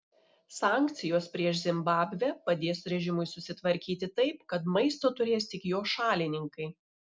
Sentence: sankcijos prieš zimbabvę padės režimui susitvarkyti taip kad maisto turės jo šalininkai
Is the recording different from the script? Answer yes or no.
yes